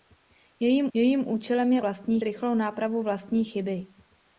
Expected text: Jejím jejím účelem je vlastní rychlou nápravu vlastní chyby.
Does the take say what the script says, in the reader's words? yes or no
yes